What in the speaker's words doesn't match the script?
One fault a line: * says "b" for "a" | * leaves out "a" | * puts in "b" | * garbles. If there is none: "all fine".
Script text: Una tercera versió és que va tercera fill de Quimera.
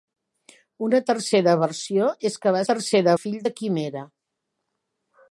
all fine